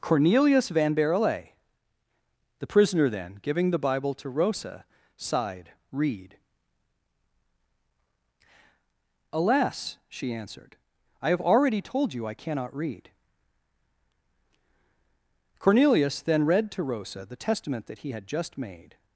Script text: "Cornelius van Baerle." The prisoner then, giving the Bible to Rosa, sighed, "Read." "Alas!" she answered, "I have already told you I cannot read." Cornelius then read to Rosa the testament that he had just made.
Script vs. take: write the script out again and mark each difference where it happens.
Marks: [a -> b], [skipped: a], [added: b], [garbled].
"Cornelius van Baerle." The prisoner then, giving the Bible to Rosa, sighed, "Read." "Alas!" she answered, "I have already told you I cannot read." Cornelius then read to Rosa the testament that he had just made.